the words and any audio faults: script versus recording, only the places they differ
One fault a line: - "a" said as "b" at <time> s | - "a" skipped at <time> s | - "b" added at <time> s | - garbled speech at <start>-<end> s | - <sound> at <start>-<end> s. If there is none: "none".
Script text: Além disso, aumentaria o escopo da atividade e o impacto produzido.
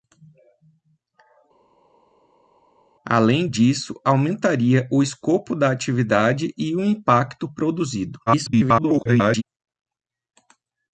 - garbled speech at 8.3-9.4 s